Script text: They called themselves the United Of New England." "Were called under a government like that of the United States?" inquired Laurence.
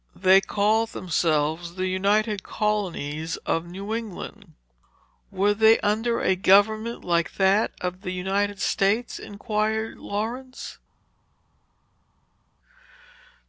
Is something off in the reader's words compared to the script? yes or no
yes